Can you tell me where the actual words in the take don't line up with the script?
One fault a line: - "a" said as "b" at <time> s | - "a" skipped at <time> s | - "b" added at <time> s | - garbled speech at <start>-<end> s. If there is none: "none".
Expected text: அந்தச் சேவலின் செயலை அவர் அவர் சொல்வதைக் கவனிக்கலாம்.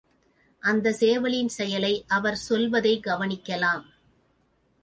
- "அவர்" skipped at 2.4 s